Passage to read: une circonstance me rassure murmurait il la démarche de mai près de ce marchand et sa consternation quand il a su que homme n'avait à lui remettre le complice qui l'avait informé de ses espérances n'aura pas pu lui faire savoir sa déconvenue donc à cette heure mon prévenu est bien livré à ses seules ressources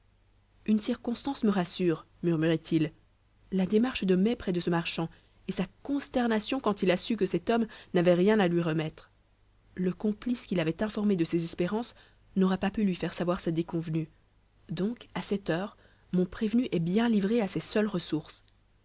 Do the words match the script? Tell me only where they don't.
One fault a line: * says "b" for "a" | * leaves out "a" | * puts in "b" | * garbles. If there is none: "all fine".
* puts in "cet"
* puts in "rien"